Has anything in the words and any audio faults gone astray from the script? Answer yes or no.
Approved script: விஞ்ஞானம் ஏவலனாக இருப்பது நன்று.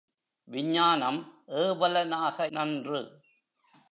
yes